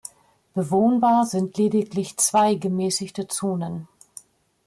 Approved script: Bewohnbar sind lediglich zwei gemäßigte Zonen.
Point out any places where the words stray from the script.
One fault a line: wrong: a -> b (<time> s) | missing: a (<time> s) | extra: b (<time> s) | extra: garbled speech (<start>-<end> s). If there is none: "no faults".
no faults